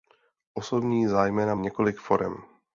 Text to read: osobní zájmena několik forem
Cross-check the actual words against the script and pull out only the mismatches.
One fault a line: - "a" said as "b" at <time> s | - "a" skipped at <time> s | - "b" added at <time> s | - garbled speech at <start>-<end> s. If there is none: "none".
none